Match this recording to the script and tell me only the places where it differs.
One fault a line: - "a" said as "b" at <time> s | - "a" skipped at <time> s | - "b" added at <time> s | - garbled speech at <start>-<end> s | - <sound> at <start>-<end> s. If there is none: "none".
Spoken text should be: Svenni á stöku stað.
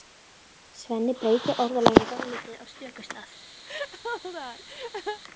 - "breytir orðalaginu dálítið" added at 1.2 s
- laugh at 3.6-5.2 s